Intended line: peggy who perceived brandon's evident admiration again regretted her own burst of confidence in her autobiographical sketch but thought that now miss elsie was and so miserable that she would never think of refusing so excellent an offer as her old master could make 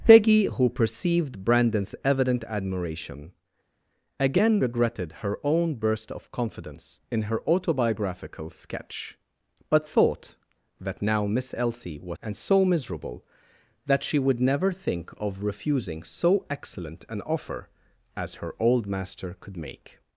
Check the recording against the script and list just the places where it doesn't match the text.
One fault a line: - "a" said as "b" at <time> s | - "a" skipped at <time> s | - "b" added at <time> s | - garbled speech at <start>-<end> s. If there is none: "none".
none